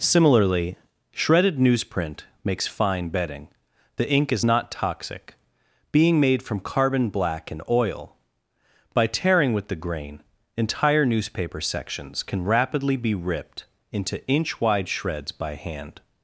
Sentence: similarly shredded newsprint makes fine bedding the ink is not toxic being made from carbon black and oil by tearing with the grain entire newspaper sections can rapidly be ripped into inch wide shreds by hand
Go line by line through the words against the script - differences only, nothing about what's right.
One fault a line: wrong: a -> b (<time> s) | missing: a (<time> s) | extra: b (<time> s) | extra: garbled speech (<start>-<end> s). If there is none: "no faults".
no faults